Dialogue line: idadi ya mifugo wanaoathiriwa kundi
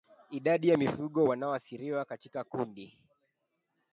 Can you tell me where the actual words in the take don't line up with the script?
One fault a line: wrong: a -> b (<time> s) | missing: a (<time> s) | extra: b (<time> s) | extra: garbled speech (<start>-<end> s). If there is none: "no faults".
extra: katika (2.1 s)